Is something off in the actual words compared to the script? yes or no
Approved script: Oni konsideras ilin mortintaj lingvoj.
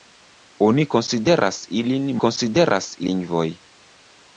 yes